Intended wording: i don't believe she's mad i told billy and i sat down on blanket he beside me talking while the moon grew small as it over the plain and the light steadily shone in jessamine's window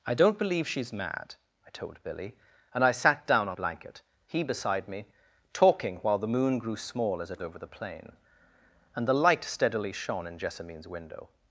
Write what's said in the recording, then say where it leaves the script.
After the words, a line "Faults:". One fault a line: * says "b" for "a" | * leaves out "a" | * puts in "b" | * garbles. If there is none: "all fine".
i don't believe she's mad i told billy and i sat down on blanket he beside me talking while the moon grew small as it over the plain and the light steadily shone in jessamine's window
Faults:
all fine